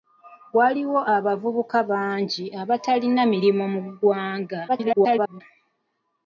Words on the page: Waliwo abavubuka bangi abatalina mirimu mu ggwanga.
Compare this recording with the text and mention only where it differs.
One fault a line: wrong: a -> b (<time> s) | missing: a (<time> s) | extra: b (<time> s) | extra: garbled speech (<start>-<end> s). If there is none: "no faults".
extra: garbled speech (4.7-5.4 s)